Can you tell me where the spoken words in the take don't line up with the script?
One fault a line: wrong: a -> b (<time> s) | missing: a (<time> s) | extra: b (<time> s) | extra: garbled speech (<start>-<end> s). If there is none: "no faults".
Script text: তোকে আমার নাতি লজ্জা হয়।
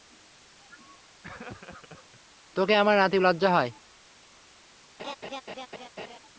no faults